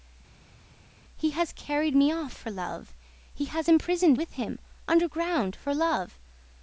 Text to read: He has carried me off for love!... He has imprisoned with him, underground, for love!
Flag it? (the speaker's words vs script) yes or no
no